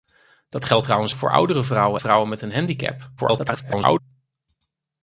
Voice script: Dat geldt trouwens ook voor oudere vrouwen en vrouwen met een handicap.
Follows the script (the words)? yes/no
no